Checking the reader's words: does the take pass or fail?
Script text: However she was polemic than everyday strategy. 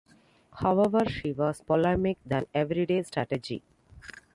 pass